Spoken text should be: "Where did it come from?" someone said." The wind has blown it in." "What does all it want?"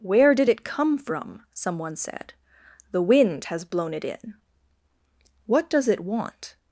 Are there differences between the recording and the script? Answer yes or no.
yes